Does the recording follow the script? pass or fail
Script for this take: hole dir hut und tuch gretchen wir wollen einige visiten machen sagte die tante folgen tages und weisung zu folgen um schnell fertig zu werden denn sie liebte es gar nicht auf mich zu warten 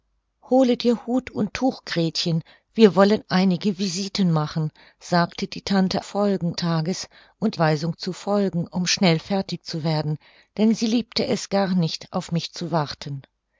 pass